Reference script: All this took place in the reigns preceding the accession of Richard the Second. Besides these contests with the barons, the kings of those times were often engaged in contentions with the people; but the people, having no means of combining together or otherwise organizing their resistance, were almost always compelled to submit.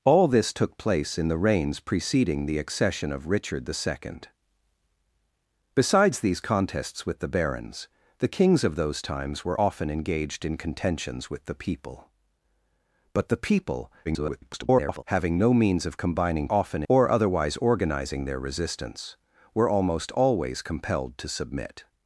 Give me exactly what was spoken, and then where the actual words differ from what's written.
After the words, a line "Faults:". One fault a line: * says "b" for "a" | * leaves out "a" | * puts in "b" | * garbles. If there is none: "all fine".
All this took place in the reigns preceding the accession of Richard the Second. Besides these contests with the barons, the kings of those times were often engaged in contentions with the people; but the people, [garbled] having no means of combining often or otherwise organizing their resistance, were almost always compelled to submit.
Faults:
* garbles
* says "often" for "together"